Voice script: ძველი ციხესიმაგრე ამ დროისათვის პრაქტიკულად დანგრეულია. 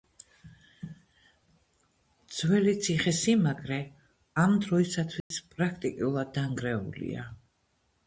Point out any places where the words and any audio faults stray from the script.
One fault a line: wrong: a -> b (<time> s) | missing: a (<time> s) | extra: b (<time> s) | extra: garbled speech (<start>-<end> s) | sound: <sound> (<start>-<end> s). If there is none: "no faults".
sound: dropout (5.2-5.3 s)